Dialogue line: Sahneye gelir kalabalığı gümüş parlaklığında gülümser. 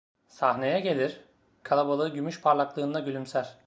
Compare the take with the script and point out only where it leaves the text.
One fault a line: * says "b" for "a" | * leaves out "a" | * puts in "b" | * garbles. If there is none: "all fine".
all fine